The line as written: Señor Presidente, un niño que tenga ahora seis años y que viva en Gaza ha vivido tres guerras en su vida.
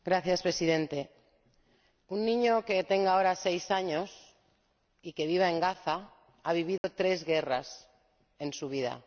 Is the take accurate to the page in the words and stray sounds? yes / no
no